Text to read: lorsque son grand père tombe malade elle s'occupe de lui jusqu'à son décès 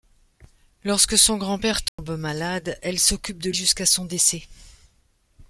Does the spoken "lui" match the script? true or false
false